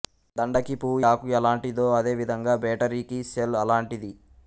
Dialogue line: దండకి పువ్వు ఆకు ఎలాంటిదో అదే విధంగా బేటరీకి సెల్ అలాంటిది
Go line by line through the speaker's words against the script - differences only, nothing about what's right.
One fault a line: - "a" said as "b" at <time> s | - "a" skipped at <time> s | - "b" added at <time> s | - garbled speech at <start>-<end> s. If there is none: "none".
none